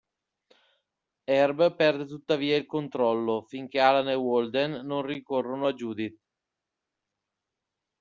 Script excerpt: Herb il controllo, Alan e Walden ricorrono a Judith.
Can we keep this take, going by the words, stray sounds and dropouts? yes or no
no